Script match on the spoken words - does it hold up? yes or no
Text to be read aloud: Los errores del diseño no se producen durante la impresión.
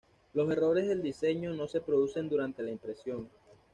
yes